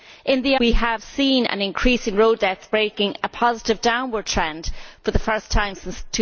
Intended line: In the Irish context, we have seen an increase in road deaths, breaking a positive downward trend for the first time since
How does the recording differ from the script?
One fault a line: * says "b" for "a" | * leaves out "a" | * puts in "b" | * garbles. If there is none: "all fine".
* leaves out "Irish context"